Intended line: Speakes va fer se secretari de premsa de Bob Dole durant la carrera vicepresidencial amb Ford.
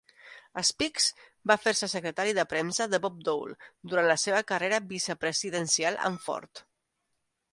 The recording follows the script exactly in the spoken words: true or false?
false